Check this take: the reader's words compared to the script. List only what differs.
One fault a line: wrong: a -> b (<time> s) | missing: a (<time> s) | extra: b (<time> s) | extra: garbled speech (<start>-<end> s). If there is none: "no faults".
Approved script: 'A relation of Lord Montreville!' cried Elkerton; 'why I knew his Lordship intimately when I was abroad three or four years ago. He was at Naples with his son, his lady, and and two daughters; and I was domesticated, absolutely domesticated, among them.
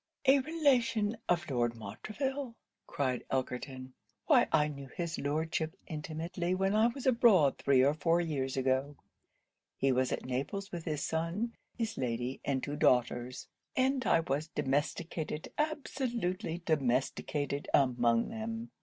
missing: and (12.6 s)